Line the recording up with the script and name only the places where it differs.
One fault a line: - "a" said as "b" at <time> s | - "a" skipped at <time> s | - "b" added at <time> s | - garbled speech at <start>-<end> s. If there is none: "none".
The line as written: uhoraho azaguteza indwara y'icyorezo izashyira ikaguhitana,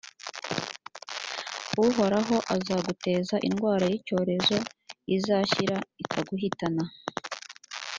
none